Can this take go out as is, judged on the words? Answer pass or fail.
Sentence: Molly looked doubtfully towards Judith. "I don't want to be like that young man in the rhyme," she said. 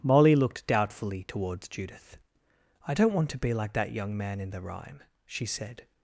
pass